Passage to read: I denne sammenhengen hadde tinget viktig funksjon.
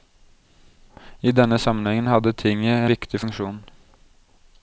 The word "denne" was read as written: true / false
true